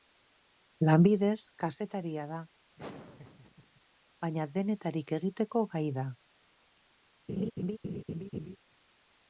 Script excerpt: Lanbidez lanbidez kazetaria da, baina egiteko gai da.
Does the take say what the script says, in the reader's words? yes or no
no